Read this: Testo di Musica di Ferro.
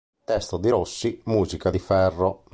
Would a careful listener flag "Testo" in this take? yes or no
no